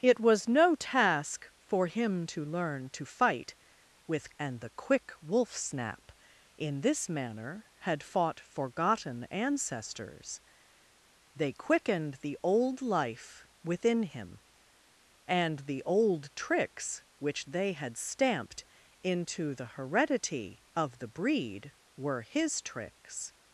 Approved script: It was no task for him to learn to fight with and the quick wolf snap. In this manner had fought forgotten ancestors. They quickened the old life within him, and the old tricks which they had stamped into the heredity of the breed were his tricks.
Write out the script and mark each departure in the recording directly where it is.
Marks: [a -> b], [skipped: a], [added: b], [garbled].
It was no task for him to learn to fight with and the quick wolf snap. In this manner had fought forgotten ancestors. They quickened the old life within him, and the old tricks which they had stamped into the heredity of the breed were his tricks.